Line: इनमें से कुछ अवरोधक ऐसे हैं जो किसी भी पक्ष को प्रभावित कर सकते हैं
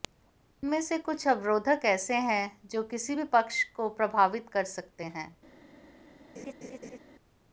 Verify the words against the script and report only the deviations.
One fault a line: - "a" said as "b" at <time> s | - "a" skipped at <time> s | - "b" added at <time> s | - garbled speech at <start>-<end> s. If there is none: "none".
none